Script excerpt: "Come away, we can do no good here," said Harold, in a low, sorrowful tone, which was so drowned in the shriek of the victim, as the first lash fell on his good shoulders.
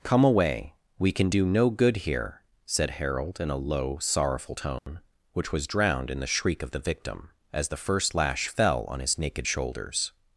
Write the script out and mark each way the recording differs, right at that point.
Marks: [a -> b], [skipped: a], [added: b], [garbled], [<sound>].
"Come away, we can do no good here," said Harold, in a low, sorrowful tone, [dropout] which was [skipped: so] drowned in the shriek of the victim, as the first lash fell on his [good -> naked] shoulders.